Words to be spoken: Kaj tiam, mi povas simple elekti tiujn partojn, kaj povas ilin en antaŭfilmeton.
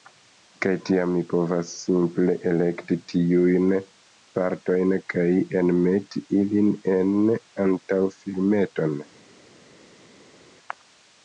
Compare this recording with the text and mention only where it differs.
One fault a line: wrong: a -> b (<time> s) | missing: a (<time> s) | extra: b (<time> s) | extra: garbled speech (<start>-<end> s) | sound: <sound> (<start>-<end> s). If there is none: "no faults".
wrong: povas -> enmeti (5.6 s)